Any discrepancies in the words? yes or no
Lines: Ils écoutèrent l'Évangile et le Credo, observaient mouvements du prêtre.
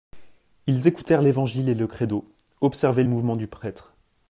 no